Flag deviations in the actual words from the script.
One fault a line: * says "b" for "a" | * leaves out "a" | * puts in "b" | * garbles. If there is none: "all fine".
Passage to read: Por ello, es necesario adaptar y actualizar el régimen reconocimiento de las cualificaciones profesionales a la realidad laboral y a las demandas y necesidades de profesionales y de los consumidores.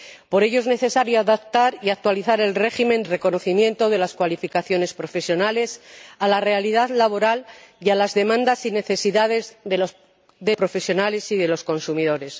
all fine